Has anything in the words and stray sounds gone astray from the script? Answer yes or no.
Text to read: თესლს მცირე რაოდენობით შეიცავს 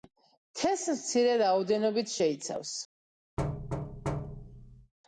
yes